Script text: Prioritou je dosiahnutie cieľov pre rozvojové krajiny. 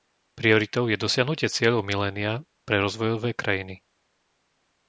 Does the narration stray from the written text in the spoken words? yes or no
yes